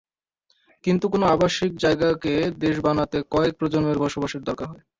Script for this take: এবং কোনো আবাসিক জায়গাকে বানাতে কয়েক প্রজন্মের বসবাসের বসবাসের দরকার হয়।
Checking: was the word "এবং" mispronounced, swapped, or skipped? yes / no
yes